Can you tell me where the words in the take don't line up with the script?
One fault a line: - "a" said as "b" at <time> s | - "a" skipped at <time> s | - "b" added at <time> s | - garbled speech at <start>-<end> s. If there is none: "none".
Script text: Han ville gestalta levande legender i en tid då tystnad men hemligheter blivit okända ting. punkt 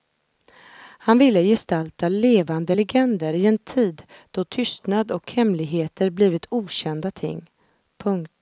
- "men" said as "och" at 5.1 s